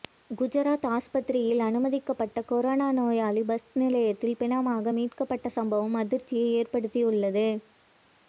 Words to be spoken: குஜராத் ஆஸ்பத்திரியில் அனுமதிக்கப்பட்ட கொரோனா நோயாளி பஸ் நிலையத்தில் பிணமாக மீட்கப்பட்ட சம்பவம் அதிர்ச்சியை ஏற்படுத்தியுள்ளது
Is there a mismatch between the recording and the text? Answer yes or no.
no